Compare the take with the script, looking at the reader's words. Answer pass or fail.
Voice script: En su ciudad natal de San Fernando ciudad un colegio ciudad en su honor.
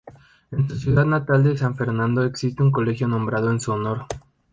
fail